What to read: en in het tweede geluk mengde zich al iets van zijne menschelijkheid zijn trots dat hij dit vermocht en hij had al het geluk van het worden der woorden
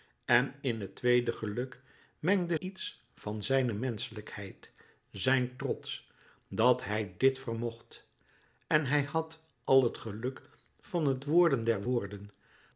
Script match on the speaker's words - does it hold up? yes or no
no